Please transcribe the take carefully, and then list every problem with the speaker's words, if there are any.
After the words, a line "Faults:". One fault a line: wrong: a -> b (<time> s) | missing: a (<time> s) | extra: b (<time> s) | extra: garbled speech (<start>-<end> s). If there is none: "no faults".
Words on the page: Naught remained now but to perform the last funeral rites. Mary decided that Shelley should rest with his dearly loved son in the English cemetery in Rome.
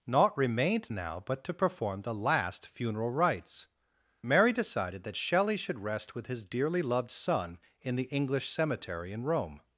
Naught remained now but to perform the last funeral rites. Mary decided that Shelley should rest with his dearly loved son in the English cemetery in Rome.
Faults:
no faults